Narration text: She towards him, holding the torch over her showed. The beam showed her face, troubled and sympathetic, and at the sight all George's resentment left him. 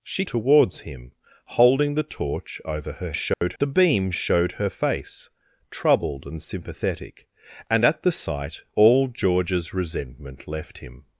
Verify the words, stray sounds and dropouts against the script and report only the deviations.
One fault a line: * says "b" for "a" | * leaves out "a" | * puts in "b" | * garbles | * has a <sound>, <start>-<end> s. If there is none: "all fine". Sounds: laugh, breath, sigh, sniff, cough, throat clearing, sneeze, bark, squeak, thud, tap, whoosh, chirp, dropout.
* has a dropout, 3.3-3.4 s